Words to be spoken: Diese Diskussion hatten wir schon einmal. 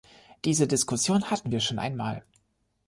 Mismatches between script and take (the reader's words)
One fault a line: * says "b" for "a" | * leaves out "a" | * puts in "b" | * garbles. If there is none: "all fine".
all fine